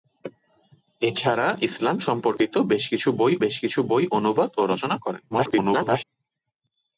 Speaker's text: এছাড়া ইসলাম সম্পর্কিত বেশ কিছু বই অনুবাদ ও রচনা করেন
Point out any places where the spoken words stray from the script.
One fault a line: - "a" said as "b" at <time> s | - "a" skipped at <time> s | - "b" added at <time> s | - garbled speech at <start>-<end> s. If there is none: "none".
- "বেশ কিছু বই" added at 3.4 s
- garbled speech at 5.3-6.0 s